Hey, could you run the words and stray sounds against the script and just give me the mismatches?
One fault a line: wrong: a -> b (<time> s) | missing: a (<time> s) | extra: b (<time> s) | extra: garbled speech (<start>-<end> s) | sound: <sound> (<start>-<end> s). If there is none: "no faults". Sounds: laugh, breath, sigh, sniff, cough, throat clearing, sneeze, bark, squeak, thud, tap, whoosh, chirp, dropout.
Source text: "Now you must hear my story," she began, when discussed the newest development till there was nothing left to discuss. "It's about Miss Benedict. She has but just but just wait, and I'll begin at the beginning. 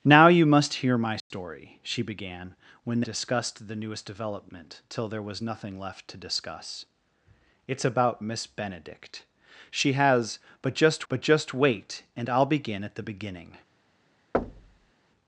sound: dropout (1.2-1.3 s)
sound: thud (14.3-14.9 s)